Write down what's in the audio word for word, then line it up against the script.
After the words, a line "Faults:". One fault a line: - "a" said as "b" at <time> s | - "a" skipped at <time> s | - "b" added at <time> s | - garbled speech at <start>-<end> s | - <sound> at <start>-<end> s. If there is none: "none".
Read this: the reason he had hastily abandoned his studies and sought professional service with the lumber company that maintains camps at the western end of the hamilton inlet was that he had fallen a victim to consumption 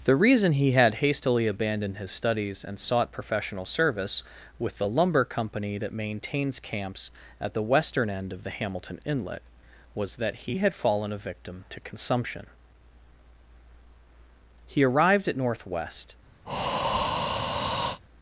the reason he had hastily abandoned his studies and sought professional service with the lumber company that maintains camps at the western end of the hamilton inlet was that he had fallen a victim to consumption he arrived at northwest
Faults:
- "he arrived at northwest" added at 14.7 s
- breath at 16.5-18.0 s